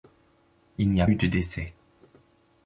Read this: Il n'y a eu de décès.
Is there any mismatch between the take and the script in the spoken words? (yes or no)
no